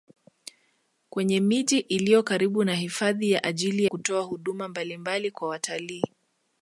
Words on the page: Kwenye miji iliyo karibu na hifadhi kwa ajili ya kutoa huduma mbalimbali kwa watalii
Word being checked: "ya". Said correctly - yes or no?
no